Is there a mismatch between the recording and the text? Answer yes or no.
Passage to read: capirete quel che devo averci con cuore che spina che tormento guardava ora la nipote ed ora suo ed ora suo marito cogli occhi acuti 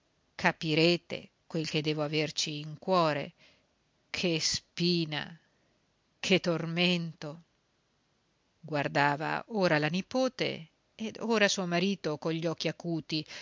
yes